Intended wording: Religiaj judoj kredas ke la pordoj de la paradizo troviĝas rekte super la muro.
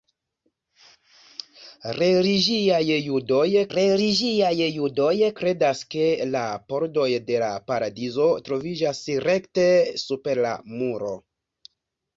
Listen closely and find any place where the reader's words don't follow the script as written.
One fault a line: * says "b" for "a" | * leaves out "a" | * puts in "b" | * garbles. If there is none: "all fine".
* puts in "religiaj judoj"